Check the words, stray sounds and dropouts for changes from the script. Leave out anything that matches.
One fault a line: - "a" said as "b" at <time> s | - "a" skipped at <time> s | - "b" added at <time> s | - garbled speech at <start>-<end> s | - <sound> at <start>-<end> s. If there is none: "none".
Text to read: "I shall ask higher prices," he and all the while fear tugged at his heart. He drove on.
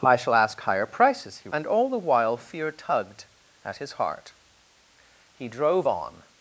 none